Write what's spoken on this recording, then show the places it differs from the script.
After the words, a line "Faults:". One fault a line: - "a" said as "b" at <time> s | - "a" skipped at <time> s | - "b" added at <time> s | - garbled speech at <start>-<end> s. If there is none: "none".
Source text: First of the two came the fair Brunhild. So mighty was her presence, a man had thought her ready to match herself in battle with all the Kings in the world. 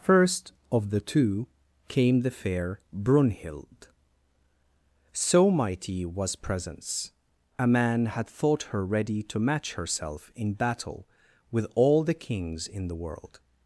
First of the two came the fair Brunhild. So mighty was presence, a man had thought her ready to match herself in battle with all the Kings in the world.
Faults:
- "her" skipped at 6.4 s